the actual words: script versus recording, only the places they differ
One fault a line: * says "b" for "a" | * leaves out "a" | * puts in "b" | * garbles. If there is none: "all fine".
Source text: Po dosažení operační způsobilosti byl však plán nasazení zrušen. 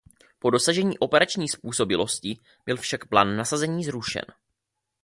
all fine